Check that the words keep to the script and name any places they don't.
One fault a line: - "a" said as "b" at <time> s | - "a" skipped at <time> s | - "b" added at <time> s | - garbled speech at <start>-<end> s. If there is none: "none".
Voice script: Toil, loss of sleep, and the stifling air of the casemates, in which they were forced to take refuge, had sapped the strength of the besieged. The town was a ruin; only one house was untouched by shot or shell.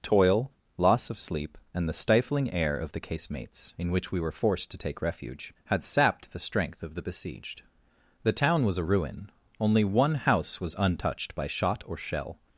- "they" said as "we" at 4.1 s